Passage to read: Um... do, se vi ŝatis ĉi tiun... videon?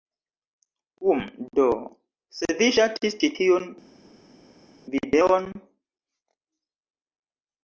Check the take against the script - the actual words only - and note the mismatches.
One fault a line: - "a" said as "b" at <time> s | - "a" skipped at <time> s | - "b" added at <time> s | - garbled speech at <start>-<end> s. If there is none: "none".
none